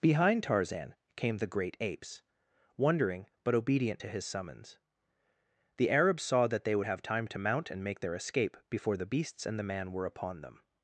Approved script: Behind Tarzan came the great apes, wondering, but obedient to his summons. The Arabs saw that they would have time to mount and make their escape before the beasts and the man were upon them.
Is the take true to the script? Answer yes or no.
yes